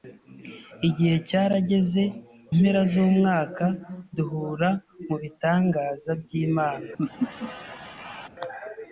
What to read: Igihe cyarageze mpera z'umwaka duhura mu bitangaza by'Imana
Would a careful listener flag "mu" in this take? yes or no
no